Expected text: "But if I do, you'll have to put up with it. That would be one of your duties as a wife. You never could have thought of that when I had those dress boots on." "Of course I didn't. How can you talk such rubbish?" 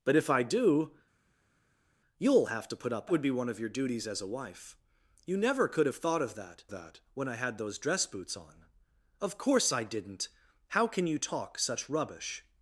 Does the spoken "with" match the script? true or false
false